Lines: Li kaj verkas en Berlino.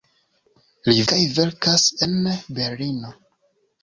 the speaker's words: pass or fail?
pass